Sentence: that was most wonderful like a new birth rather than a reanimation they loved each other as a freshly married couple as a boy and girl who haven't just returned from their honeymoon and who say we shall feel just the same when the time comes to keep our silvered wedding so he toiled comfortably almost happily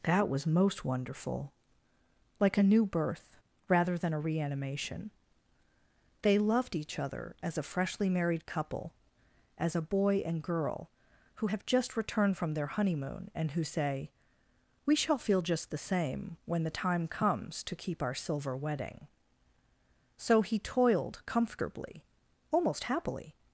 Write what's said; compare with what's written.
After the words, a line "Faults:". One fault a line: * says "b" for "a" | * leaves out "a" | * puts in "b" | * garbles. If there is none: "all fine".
that was most wonderful like a new birth rather than a reanimation they loved each other as a freshly married couple as a boy and girl who have just returned from their honeymoon and who say we shall feel just the same when the time comes to keep our silver wedding so he toiled comfortably almost happily
Faults:
* says "have" for "haven't"
* says "silver" for "silvered"